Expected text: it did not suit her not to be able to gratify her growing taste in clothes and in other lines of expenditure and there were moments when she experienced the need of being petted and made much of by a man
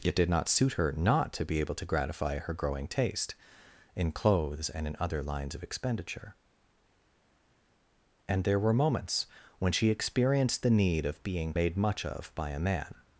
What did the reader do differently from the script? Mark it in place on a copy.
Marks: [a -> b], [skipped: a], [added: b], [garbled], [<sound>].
it did not suit her not to be able to gratify her growing taste in clothes and in other lines of expenditure and there were moments when she experienced the need of being [skipped: petted and] made much of by a man